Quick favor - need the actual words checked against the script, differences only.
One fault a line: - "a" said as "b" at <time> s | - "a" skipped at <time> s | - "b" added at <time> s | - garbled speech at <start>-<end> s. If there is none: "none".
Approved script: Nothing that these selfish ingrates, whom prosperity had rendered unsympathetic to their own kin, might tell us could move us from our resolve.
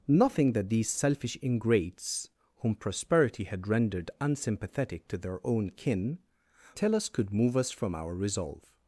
- "might" skipped at 6.2 s